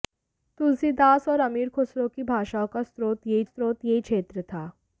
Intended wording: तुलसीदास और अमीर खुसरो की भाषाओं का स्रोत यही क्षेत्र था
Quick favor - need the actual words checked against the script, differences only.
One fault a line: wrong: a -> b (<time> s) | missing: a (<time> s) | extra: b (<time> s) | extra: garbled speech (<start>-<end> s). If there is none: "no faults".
extra: स्रोत यही (3.4 s)